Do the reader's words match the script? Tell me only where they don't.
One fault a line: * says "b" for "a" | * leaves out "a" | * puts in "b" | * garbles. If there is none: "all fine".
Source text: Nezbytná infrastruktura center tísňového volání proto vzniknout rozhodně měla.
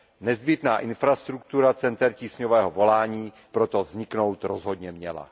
all fine